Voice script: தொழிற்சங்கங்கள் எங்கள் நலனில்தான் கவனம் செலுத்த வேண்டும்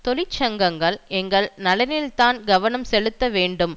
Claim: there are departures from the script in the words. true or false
false